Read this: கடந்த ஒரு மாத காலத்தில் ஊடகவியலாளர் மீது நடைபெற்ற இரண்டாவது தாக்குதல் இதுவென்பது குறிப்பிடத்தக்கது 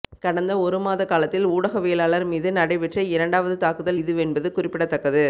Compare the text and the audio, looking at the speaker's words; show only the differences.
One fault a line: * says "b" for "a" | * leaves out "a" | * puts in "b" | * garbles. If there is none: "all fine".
all fine